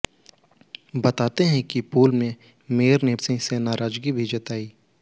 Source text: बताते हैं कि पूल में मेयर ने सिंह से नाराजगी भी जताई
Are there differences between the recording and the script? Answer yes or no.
no